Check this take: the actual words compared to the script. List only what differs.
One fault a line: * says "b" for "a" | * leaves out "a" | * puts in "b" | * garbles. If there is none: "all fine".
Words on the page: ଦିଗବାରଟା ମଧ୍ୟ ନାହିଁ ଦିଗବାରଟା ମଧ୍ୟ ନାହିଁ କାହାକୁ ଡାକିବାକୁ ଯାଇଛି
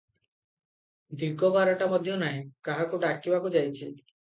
* leaves out "ଦିଗବାରଟା ମଧ୍ୟ ନାହିଁ"